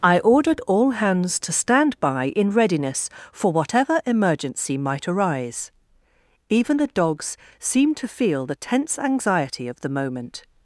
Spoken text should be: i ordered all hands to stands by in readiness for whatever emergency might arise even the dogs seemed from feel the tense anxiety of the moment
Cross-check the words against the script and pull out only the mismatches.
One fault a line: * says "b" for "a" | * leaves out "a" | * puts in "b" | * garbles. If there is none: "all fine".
* says "stand" for "stands"
* says "to" for "from"